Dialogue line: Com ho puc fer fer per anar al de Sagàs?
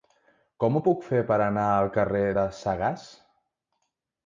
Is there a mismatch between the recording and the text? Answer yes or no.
yes